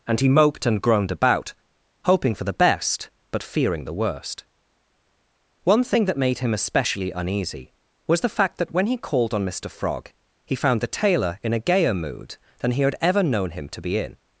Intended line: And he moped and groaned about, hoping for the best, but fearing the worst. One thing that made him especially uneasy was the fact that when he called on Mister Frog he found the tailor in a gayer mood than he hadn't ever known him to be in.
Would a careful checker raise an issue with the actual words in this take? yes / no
yes